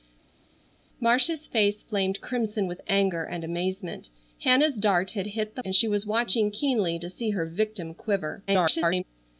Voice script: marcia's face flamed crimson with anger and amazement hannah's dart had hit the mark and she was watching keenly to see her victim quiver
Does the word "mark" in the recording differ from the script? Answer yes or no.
yes